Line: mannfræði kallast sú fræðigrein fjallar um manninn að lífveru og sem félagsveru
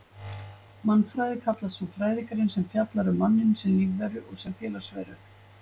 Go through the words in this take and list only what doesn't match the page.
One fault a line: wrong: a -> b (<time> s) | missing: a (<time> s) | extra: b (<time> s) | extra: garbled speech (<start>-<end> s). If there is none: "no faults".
extra: sem (2.5 s)
wrong: að -> sem (3.6 s)